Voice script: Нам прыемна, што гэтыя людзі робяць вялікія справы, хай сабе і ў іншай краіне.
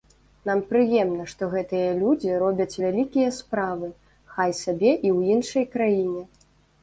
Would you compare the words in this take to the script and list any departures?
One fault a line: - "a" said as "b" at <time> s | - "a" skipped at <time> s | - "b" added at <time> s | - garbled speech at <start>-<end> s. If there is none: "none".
none